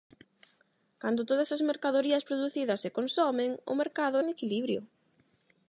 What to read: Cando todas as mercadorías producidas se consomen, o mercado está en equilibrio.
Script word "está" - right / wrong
wrong